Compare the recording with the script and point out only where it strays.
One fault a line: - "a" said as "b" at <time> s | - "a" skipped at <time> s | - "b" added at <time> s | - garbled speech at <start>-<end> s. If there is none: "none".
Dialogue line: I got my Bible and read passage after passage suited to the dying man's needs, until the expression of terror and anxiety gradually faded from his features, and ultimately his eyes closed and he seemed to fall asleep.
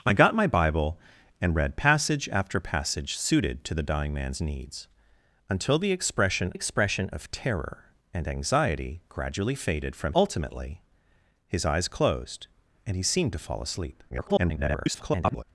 - "expression" added at 6.5 s
- "his features and" skipped at 10.1 s
- garbled speech at 14.1-15.4 s